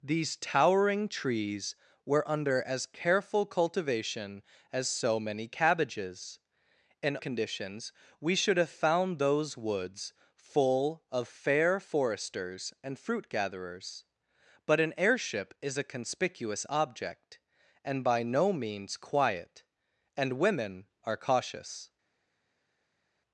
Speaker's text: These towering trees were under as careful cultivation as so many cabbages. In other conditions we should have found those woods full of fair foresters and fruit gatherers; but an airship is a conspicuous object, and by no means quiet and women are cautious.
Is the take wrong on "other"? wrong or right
wrong